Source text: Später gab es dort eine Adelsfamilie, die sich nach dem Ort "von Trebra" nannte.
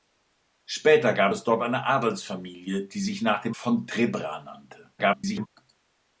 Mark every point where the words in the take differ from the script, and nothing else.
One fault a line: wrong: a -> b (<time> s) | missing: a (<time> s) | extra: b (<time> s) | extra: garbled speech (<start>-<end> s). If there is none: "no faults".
missing: Ort (3.6 s)
extra: garbled speech (5.0-5.5 s)